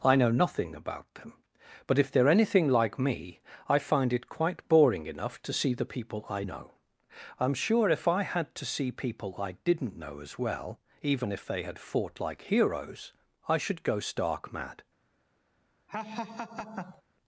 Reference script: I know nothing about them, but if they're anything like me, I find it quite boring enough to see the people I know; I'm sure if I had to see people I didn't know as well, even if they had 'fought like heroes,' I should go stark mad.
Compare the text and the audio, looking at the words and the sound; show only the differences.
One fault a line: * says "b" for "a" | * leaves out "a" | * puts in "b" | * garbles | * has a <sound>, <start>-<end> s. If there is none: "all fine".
* has a laugh, 15.9-17.0 s